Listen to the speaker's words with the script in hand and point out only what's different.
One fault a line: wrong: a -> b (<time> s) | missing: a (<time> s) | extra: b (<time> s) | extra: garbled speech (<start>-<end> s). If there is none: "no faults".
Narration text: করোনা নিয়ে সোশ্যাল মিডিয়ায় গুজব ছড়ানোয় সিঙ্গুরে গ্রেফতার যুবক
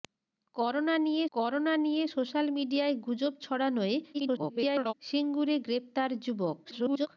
extra: করোনা নিয়ে (1.3 s)
extra: garbled speech (4.1-4.9 s)
extra: garbled speech (6.6-7.1 s)